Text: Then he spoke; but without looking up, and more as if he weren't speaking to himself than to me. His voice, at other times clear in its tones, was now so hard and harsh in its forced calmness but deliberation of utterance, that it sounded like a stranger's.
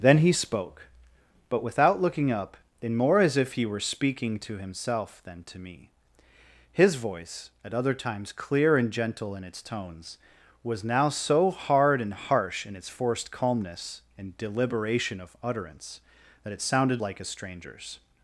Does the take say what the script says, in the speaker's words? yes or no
no